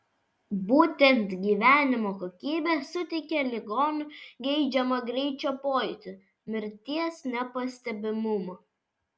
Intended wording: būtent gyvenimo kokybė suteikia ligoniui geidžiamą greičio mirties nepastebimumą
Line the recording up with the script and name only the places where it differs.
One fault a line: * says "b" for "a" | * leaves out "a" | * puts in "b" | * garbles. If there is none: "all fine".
* puts in "pojūtį"